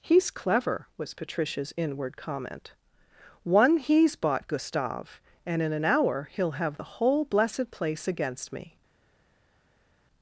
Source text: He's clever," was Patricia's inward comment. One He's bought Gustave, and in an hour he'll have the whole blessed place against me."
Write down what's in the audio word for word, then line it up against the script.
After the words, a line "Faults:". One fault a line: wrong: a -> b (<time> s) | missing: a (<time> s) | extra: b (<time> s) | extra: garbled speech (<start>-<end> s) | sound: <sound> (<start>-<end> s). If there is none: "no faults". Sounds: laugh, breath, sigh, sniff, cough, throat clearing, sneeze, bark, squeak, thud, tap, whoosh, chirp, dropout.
He's clever," was Patricia's inward comment. One He's bought Gustave, and in an hour he'll have the whole blessed place against me."
Faults:
no faults